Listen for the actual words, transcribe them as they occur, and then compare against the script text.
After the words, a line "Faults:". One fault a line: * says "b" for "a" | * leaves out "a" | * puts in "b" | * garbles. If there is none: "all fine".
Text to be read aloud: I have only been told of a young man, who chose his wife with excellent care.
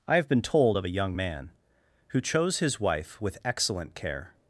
I have been told of a young man, who chose his wife with excellent care.
Faults:
* leaves out "only"